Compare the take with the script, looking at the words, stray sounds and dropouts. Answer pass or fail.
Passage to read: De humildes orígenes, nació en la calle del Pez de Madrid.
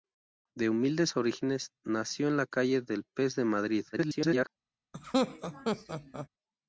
fail